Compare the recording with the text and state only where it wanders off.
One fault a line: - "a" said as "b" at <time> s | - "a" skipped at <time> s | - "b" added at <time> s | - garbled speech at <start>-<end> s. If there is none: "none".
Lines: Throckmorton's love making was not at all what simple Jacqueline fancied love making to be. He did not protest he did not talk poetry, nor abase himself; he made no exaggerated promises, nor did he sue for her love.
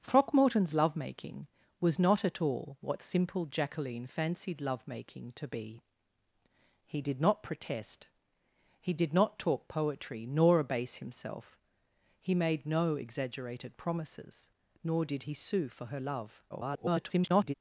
- garbled speech at 16.5-17.5 s